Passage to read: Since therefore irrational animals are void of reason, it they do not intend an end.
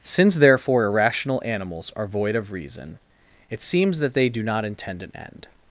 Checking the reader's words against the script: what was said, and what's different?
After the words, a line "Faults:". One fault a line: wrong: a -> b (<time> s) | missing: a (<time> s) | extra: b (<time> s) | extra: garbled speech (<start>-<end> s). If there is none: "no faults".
Since therefore irrational animals are void of reason, it seems that they do not intend an end.
Faults:
extra: seems that (3.6 s)